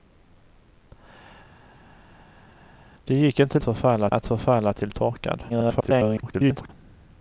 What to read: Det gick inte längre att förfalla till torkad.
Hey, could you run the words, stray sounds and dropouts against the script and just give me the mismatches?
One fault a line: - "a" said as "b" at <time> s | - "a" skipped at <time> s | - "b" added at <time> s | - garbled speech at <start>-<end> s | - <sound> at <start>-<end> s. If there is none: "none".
- "längre" said as "förfalla" at 3.6 s
- garbled speech at 5.5-6.7 s